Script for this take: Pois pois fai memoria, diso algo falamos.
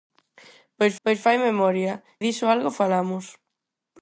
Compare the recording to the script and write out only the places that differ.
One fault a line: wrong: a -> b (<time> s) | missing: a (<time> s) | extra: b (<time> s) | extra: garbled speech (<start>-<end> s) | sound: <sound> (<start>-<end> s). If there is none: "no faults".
no faults